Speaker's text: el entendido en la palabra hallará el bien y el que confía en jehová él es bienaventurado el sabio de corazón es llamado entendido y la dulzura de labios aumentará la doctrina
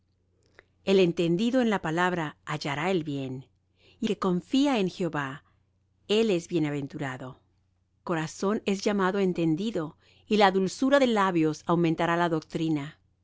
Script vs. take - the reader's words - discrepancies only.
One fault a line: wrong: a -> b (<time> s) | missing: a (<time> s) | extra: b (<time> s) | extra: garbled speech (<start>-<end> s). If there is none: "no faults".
missing: el (4.1 s)
missing: el sabio de (7.4 s)